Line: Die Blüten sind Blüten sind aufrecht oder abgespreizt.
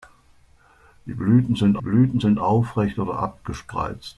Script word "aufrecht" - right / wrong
right